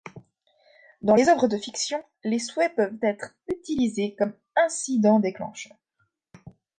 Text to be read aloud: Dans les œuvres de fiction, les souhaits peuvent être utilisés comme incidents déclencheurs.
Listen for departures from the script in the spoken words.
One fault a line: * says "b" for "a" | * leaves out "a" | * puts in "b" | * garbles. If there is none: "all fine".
all fine